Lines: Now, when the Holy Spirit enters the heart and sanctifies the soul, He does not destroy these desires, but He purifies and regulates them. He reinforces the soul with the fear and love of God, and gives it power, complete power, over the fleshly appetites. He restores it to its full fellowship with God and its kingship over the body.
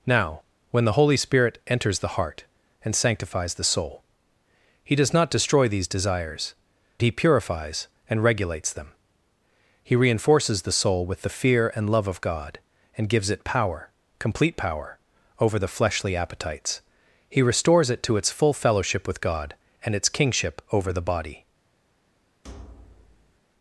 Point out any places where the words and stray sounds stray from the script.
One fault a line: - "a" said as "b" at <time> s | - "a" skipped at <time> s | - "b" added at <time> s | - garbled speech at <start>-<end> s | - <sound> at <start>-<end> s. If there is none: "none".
- "but" skipped at 6.5 s
- thud at 22.4-23.4 s